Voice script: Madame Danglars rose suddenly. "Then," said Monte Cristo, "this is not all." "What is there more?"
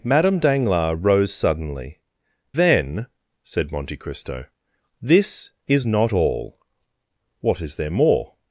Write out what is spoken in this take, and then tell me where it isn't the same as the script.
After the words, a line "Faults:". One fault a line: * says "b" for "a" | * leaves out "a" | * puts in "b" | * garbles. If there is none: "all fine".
Madame Danglars rose suddenly. "Then," said Monte Cristo, "this is not all." "What is there more?"
Faults:
all fine